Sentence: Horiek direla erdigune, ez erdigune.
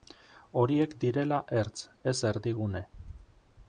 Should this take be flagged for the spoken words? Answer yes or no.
yes